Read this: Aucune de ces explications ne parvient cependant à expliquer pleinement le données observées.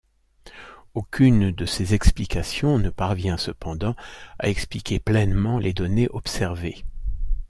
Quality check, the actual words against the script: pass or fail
fail